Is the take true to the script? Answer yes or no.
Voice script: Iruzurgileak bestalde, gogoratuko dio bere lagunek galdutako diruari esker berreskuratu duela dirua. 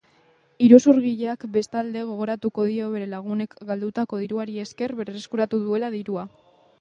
yes